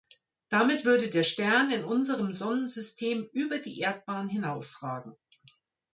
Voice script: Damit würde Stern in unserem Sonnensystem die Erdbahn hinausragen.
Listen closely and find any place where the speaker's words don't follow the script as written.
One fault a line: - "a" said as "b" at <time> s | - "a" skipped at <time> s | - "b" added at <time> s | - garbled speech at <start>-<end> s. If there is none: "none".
- "der" added at 1.1 s
- "über" added at 3.3 s